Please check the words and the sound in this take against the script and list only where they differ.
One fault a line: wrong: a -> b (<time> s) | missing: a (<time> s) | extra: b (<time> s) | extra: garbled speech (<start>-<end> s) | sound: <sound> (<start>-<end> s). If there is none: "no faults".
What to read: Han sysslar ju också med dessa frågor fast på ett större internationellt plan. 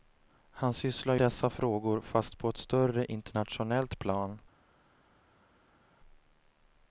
missing: ju också med (1.1 s)